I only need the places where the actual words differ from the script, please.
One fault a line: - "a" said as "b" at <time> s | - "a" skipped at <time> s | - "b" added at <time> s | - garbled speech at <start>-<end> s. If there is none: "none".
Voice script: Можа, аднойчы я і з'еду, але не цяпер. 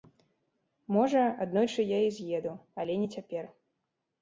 none